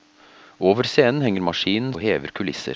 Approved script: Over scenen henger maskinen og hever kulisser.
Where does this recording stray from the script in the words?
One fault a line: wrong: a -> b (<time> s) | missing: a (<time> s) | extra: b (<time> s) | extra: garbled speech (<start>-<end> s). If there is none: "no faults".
no faults